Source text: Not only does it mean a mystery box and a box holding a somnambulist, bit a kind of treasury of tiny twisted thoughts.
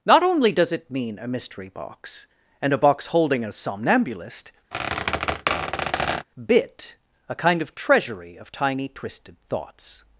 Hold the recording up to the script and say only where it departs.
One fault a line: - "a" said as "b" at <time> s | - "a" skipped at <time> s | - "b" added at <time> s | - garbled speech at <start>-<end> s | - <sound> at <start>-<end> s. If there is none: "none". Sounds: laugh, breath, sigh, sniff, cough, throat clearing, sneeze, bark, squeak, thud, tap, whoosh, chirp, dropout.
- squeak at 4.7-6.3 s